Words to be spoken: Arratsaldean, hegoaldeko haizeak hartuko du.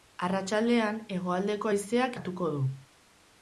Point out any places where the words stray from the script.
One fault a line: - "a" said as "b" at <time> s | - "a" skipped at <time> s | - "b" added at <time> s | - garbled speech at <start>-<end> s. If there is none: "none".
none